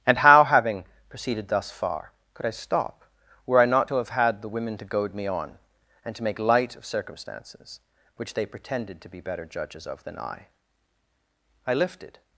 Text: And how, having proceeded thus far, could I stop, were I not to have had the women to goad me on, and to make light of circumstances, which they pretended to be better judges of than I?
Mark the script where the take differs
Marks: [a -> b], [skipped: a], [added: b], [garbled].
And how, having proceeded thus far, could I stop, were I not to have had the women to goad me on, and to make light of circumstances, which they pretended to be better judges of than I? [added: I lifted]